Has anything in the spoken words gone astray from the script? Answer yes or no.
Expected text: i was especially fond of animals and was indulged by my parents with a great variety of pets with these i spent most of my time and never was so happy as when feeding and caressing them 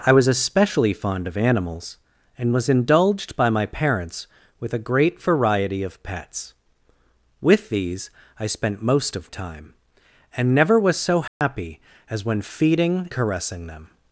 yes